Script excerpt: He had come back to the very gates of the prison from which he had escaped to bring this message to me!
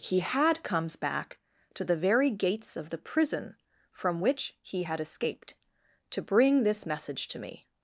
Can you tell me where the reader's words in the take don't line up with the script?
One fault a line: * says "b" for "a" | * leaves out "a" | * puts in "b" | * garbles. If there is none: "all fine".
* says "comes" for "come"